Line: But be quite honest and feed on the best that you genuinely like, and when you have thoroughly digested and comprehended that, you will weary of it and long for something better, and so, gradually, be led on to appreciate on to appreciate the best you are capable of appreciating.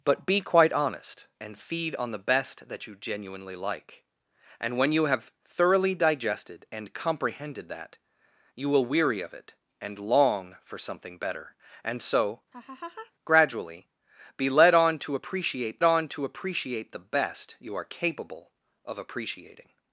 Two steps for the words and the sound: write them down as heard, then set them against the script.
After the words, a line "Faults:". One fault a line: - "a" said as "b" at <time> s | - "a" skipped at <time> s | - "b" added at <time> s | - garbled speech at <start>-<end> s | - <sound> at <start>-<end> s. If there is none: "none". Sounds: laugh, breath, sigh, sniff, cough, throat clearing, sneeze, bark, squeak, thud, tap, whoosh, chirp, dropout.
But be quite honest and feed on the best that you genuinely like, and when you have thoroughly digested and comprehended that, you will weary of it and long for something better, and so, gradually, be led on to appreciate on to appreciate the best you are capable of appreciating.
Faults:
- laugh at 12.5-13.1 s